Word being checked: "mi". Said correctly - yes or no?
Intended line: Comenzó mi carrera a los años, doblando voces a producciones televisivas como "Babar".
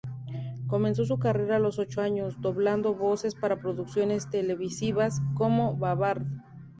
no